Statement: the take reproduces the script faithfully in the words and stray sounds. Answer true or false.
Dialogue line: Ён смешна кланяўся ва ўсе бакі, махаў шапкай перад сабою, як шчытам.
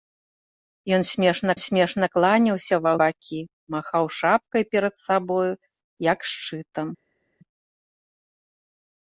false